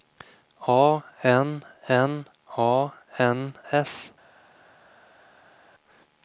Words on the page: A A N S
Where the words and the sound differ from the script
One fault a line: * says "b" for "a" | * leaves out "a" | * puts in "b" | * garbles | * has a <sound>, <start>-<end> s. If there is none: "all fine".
* puts in "N N"